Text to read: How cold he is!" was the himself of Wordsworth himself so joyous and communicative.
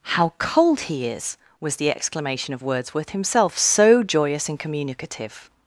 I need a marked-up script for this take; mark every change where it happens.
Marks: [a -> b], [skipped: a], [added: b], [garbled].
How cold he is!" was the [himself -> exclamation] of Wordsworth himself so joyous and communicative.